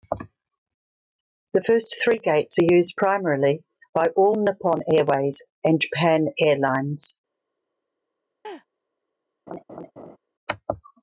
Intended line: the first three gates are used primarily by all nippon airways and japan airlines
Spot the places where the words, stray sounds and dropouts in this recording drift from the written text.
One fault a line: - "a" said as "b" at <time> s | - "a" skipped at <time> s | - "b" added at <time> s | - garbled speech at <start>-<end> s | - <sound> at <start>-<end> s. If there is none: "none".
- laugh at 8.4-8.7 s
- laugh at 9.5-10.2 s